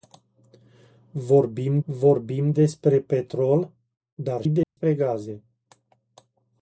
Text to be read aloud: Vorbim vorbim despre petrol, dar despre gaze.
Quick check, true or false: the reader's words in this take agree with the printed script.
true